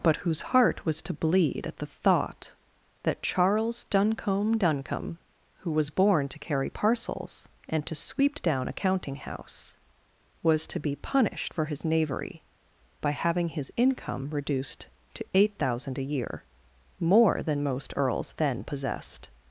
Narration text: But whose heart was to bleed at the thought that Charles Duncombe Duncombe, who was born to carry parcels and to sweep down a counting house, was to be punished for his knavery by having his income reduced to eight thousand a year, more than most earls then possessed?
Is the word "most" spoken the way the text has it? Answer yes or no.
yes